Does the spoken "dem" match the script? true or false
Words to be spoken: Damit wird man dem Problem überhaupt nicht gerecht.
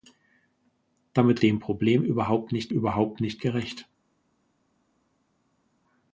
false